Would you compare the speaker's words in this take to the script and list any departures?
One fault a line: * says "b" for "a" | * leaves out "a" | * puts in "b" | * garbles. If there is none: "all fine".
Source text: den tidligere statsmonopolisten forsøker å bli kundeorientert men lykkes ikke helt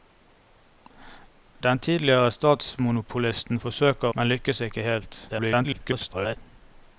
* leaves out "å bli kundeorientert"
* garbles